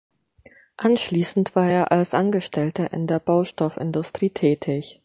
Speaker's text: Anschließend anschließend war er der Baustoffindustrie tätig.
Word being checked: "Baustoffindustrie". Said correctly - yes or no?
yes